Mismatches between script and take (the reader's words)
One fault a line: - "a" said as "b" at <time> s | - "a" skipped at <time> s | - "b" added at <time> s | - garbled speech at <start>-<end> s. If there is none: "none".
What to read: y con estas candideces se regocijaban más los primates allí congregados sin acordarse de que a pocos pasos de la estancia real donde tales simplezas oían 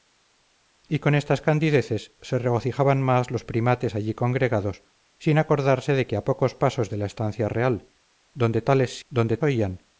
- "simplezas" said as "donde" at 9.1 s